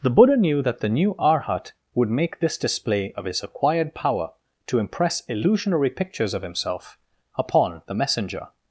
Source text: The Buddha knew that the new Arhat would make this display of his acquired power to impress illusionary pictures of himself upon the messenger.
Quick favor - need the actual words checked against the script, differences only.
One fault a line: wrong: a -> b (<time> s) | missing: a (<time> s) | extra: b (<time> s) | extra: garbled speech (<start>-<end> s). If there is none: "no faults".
no faults